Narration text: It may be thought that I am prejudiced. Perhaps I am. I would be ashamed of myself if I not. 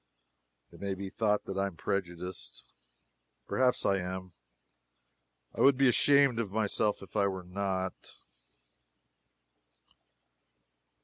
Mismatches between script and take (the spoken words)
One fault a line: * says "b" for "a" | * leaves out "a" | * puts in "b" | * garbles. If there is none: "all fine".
* puts in "were"